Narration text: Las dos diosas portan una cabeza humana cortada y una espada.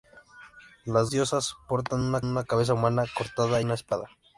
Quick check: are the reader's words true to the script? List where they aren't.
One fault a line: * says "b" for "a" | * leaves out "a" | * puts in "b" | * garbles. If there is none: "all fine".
* leaves out "dos"
* puts in "una"
* leaves out "y"